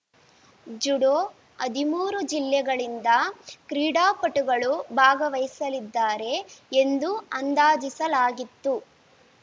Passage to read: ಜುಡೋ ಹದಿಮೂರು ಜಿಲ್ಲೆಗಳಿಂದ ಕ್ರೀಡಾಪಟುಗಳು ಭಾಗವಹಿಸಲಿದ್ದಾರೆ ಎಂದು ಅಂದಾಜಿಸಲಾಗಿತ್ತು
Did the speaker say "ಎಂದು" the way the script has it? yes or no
yes